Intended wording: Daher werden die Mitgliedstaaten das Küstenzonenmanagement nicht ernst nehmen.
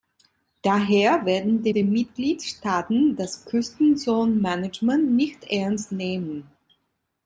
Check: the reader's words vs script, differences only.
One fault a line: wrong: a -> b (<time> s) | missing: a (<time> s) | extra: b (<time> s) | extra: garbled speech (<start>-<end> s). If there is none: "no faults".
extra: die (1.7 s)